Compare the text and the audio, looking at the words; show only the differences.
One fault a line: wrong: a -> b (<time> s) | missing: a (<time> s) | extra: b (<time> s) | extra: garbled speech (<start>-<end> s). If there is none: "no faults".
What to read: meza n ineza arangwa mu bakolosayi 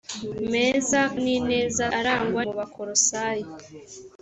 no faults